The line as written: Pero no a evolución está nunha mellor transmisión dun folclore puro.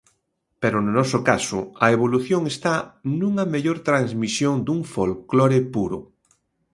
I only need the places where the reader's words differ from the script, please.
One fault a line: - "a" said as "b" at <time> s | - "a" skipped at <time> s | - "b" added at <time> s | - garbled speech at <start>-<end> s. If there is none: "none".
- "noso caso" added at 1.0 s